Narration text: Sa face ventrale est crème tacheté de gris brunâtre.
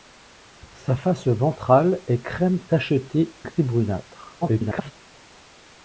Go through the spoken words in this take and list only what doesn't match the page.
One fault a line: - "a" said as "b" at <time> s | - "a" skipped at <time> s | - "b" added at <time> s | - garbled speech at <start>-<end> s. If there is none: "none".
- "de" skipped at 3.3 s
- garbled speech at 4.4-4.9 s